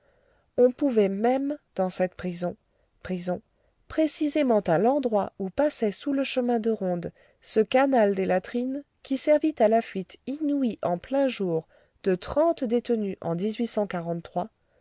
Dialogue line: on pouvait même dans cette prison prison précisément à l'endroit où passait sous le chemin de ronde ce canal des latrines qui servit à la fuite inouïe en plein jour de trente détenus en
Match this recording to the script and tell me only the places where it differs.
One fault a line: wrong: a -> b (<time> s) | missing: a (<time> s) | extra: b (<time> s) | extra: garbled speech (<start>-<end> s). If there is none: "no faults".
no faults